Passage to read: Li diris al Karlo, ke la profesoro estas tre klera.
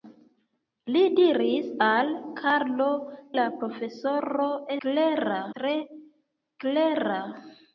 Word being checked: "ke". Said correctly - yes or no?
no